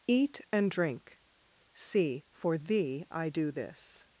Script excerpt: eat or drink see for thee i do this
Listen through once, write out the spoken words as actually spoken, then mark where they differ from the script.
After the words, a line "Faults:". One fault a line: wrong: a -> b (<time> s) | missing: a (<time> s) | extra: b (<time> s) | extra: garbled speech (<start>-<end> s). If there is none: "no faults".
eat and drink see for thee i do this
Faults:
wrong: or -> and (0.5 s)